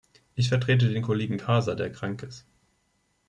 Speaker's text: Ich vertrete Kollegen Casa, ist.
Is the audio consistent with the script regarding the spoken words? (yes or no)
no